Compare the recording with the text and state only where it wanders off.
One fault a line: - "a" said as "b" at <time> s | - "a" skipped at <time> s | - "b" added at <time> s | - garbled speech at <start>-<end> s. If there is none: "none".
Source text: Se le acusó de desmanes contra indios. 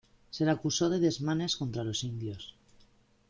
- "los" added at 1.8 s